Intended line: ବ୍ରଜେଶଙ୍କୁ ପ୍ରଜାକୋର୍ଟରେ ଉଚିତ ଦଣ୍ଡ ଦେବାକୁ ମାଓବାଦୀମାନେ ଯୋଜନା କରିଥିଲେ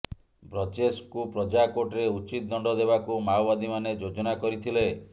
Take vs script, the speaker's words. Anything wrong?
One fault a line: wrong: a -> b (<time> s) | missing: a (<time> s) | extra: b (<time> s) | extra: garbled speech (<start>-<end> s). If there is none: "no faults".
no faults